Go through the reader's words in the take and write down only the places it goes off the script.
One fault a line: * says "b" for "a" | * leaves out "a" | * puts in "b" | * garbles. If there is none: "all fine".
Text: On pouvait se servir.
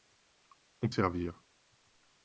* leaves out "pouvait se"